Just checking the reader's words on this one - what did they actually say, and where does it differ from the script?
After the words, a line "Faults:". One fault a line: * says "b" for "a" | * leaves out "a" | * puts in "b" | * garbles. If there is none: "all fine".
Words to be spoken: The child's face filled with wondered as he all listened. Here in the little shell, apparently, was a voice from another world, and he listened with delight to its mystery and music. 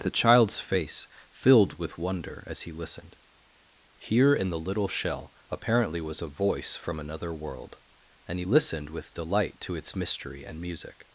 The child's face filled with wonder as he listened. Here in the little shell, apparently, was a voice from another world, and he listened with delight to its mystery and music.
Faults:
* says "wonder" for "wondered"
* leaves out "all"